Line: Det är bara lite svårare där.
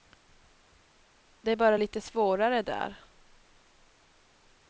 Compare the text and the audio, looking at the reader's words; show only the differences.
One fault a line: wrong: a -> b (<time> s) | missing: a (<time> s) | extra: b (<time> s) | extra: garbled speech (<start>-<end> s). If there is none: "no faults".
no faults